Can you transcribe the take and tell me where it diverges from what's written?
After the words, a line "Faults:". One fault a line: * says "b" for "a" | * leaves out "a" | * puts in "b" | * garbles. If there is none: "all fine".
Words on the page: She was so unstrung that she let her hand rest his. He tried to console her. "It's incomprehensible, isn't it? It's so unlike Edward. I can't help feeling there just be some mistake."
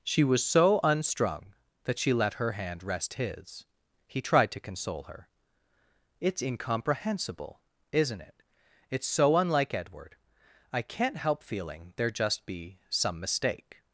She was so unstrung that she let her hand rest his. He tried to console her. "It's incomprehensible, isn't it? It's so unlike Edward. I can't help feeling there just be some mistake."
Faults:
all fine